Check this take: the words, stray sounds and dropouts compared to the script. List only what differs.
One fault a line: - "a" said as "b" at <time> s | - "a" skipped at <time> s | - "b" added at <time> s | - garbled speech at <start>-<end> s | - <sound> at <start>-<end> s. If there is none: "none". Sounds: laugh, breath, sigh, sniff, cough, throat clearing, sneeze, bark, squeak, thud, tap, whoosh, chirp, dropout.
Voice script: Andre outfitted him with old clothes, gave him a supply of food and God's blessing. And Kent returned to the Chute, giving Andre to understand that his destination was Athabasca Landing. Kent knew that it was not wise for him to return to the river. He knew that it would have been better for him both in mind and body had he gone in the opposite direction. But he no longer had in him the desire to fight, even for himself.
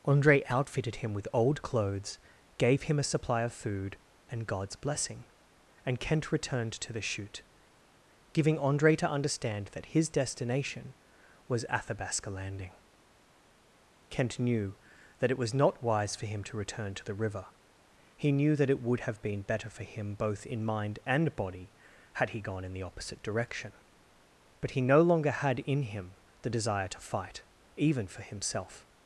none